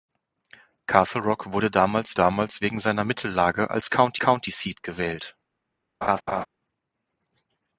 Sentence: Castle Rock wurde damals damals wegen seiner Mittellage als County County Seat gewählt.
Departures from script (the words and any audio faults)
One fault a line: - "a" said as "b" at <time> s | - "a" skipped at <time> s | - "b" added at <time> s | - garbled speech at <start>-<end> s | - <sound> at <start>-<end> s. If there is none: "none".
- laugh at 6.0-6.5 s